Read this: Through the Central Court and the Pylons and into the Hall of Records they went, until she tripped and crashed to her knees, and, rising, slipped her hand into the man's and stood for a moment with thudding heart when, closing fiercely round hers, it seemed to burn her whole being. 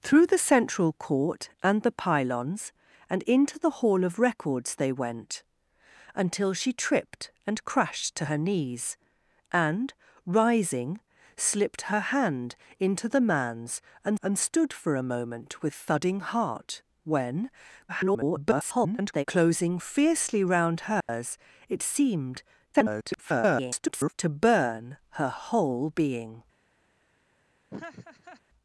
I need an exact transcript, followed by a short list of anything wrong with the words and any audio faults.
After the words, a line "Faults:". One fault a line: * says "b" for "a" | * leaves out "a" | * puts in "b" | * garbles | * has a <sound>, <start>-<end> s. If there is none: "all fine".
Through the Central Court and the Pylons and into the Hall of Records they went, until she tripped and crashed to her knees, and, rising, slipped her hand into the man's and and stood for a moment with thudding heart when, [garbled] closing fiercely round hers, it seemed [garbled] to burn her whole being.
Faults:
* puts in "and"
* garbles
* has a dropout, 21.0-21.1 s
* garbles
* has a laugh, 27.7-28.4 s